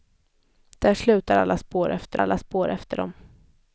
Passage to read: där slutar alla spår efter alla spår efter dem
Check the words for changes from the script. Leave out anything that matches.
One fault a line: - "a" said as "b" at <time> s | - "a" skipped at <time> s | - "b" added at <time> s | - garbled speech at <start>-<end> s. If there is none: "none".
none